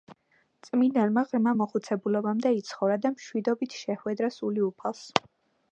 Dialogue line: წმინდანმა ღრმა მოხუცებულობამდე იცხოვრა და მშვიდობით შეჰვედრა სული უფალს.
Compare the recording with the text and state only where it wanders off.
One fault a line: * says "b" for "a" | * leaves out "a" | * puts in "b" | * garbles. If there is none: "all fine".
all fine